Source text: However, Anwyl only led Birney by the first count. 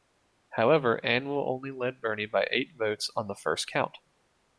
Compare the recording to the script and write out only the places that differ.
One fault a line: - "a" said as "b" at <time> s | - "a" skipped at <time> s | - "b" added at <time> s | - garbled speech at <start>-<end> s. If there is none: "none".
- "eight votes on" added at 2.5 s